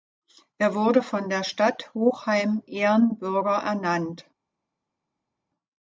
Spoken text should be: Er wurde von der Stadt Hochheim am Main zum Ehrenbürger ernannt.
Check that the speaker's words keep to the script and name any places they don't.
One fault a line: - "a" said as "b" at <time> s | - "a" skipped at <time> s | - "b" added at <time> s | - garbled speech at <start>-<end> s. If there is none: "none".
- "am Main zum" skipped at 2.6 s